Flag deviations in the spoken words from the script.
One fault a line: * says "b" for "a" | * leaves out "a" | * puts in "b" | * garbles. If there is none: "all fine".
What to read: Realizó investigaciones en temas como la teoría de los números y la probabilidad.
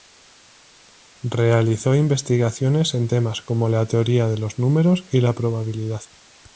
all fine